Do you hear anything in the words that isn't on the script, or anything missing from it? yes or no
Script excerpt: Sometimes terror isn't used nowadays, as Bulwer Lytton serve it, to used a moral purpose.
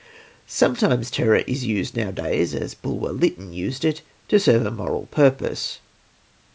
yes